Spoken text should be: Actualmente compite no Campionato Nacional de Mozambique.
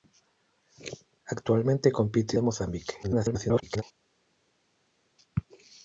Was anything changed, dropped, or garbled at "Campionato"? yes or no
yes